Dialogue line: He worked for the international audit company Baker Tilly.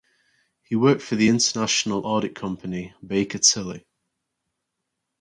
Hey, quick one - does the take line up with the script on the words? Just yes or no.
yes